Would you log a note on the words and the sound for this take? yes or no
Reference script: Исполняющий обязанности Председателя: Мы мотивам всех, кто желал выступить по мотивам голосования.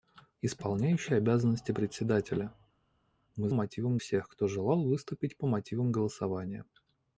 no